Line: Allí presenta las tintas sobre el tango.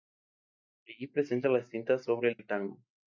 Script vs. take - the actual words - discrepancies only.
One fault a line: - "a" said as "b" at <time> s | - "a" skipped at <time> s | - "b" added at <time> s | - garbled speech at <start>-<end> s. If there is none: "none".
- "el" added at 2.4 s